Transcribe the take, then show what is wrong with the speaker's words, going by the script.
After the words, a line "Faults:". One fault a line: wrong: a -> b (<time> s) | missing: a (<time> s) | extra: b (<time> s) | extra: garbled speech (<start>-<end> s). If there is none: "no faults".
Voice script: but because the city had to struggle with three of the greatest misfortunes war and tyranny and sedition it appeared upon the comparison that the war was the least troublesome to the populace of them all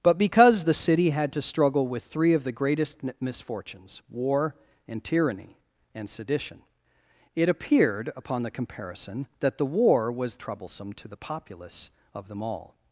but because the city had to struggle with three of the greatest misfortunes war and tyranny and sedition it appeared upon the comparison that the war was troublesome to the populace of them all
Faults:
missing: the least (10.4 s)